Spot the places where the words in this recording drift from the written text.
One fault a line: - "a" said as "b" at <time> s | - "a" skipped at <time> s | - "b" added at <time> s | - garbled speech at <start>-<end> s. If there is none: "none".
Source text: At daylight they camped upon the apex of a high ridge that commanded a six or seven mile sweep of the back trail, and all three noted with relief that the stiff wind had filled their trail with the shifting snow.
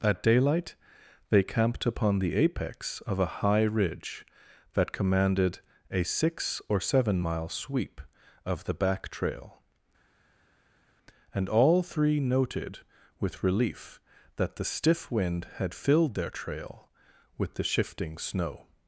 none